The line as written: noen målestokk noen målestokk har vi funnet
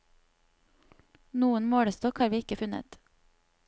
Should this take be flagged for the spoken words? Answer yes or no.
yes